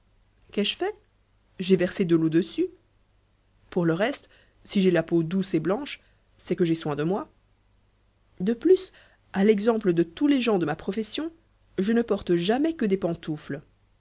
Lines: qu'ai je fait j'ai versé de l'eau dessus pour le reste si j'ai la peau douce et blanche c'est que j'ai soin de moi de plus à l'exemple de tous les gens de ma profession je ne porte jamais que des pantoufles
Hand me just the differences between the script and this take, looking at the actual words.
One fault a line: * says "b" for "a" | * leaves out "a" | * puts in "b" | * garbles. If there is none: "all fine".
all fine